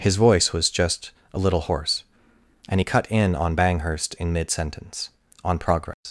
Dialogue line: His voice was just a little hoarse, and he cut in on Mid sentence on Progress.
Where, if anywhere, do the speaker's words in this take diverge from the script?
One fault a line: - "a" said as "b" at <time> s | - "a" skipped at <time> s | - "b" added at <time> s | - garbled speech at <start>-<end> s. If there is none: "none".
- "Banghurst in" added at 3.6 s